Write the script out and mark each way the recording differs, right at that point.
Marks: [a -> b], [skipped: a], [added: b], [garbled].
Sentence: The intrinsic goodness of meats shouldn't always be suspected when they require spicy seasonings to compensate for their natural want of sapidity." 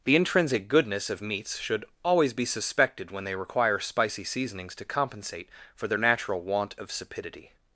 The intrinsic goodness of meats [shouldn't -> should] always be suspected when they require spicy seasonings to compensate for their natural want of sapidity."